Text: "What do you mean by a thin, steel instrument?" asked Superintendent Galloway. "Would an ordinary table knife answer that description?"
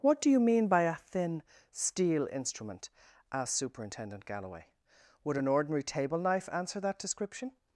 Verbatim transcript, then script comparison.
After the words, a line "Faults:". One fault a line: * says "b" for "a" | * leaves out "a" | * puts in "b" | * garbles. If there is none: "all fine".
"What do you mean by a thin, steel instrument?" asked Superintendent Galloway. "Would an ordinary table knife answer that description?"
Faults:
all fine